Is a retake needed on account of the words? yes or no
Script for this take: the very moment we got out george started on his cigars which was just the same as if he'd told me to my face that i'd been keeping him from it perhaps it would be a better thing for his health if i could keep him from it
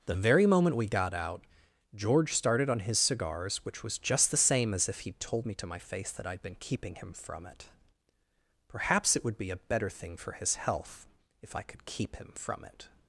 no